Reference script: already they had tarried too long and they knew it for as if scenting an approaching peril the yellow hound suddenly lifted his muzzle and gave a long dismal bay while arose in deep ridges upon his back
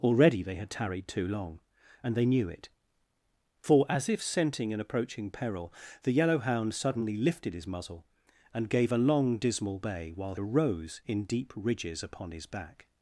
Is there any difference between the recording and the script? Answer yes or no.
no